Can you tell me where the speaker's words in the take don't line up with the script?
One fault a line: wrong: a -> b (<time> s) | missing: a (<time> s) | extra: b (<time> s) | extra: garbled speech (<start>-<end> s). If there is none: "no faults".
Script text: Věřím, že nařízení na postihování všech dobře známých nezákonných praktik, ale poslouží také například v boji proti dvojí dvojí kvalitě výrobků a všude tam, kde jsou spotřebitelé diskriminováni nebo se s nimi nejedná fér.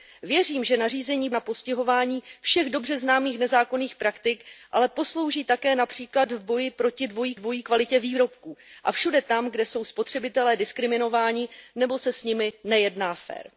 no faults